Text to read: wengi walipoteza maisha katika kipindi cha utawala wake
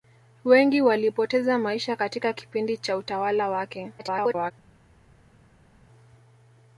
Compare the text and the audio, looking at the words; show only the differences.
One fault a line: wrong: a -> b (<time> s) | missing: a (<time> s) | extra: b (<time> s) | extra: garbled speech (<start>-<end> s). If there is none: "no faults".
extra: garbled speech (4.0-4.5 s)